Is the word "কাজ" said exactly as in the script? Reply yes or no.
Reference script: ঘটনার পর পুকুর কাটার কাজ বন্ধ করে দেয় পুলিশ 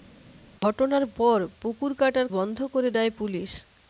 no